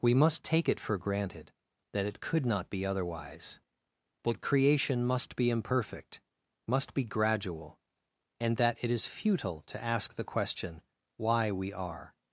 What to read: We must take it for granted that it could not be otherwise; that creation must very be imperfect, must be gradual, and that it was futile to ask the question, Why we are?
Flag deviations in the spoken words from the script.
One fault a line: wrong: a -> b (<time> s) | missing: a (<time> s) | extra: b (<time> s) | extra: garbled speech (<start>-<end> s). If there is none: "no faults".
missing: very (5.3 s)
wrong: was -> is (8.9 s)